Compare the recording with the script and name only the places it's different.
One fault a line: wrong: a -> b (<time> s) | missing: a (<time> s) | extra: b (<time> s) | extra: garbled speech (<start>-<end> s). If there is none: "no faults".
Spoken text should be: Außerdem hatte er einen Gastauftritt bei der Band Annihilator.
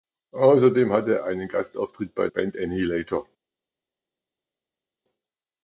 missing: der (2.3 s)